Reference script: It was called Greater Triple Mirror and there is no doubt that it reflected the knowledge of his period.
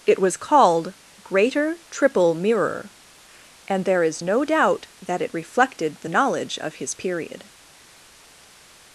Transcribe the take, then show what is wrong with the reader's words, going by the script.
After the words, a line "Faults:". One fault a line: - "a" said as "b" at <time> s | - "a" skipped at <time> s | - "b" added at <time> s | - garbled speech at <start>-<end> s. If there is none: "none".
It was called Greater Triple Mirror and there is no doubt that it reflected the knowledge of his period.
Faults:
none